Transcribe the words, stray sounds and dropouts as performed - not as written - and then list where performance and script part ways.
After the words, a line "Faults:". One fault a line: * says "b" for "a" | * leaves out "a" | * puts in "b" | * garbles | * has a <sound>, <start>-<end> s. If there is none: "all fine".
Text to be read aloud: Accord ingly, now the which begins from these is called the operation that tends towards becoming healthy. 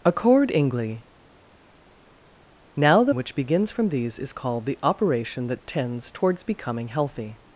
Accord ingly, now the which begins from these is called the operation that tends towards becoming healthy.
Faults:
all fine